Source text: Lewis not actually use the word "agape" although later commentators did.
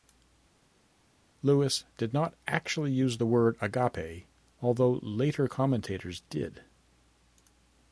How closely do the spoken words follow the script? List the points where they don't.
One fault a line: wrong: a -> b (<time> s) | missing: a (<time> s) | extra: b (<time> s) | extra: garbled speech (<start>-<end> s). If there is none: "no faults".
extra: did (2.0 s)